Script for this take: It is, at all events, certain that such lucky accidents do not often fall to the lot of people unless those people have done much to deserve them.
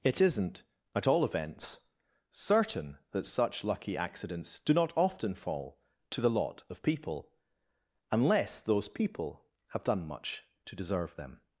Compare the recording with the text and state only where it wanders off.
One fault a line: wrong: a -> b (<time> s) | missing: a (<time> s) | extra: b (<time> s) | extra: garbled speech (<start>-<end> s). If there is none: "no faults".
wrong: is -> isn't (0.2 s)